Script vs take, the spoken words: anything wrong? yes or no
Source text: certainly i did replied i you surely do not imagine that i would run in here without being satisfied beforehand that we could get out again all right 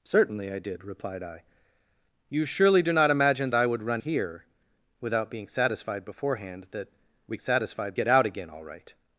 yes